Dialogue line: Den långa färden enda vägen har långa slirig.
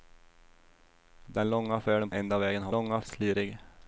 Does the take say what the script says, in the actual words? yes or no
yes